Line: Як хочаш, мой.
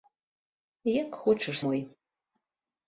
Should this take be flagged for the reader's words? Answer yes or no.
no